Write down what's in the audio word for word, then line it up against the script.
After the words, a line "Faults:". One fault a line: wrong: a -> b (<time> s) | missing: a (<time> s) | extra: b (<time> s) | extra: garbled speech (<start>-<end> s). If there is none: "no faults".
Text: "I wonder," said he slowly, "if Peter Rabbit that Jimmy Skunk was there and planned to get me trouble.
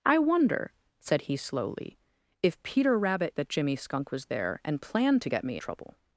"I wonder," said he slowly, "if Peter Rabbit that Jimmy Skunk was there and planned to get me trouble.
Faults:
no faults